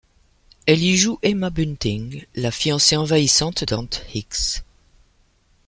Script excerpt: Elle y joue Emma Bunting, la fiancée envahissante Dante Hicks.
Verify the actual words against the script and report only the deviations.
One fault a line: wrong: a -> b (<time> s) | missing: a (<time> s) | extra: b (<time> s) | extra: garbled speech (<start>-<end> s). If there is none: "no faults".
no faults